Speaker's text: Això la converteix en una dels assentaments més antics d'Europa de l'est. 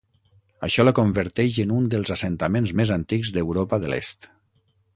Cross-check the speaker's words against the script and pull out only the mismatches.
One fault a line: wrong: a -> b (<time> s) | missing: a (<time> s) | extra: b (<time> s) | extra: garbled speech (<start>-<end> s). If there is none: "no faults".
wrong: una -> un (1.8 s)